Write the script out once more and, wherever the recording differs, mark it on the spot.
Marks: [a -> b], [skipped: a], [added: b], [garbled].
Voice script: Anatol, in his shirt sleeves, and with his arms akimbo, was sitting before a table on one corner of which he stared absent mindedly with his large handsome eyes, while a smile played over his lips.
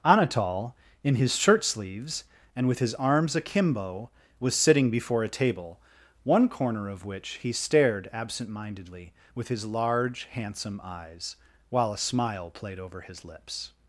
Anatol, in his shirt sleeves, and with his arms akimbo, was sitting before a table [skipped: on] one corner of which he stared absent mindedly with his large handsome eyes, while a smile played over his lips.